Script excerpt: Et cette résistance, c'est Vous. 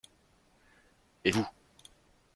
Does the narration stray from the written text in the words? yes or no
yes